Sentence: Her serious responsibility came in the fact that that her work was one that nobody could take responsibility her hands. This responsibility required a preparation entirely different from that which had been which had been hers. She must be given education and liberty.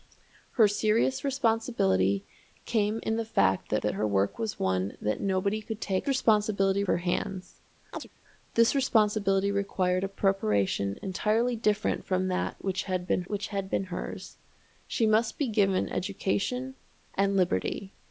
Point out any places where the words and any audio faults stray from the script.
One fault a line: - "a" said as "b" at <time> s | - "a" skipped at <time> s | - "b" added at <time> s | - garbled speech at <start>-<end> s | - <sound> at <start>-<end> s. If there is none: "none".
- chirp at 7.9-8.1 s